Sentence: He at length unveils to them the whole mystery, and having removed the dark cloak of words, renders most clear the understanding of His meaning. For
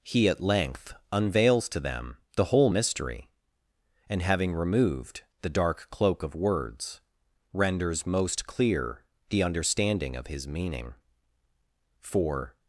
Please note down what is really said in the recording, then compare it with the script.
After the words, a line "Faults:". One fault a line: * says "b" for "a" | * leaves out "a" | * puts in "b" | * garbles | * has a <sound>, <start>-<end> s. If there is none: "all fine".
He at length unveils to them the whole mystery, and having removed the dark cloak of words, renders most clear the understanding of His meaning. For
Faults:
all fine